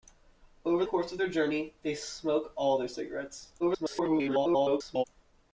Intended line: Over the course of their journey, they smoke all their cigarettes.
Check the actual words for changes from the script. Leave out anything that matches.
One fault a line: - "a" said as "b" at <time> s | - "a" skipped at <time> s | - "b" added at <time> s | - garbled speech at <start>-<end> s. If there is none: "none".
- "the" skipped at 0.8 s
- garbled speech at 3.6-5.0 s